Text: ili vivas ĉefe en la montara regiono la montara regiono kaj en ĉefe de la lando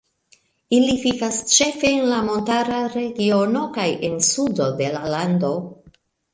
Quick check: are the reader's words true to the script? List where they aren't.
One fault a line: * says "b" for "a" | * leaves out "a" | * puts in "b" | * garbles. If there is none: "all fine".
* leaves out "la montara regiono"
* says "sudo" for "ĉefe"